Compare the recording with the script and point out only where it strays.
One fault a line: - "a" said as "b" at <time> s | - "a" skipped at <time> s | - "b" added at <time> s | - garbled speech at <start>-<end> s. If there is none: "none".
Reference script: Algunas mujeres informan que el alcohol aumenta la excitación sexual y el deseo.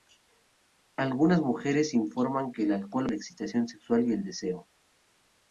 - "aumenta" skipped at 3.1 s